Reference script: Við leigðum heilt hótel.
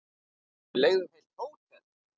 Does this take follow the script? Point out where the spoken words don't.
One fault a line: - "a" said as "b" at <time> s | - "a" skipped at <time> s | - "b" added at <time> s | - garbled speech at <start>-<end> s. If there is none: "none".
none